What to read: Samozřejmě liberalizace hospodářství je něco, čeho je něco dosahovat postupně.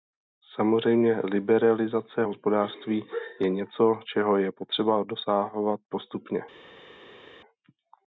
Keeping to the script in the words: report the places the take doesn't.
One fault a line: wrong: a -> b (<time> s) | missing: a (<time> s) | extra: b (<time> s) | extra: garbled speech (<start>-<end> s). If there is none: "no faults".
wrong: něco -> potřeba (4.5 s)